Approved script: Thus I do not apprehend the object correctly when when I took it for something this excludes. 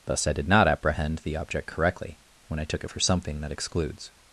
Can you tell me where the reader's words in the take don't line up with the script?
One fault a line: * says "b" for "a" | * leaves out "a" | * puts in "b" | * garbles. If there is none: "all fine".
* says "did" for "do"
* leaves out "when"
* says "that" for "this"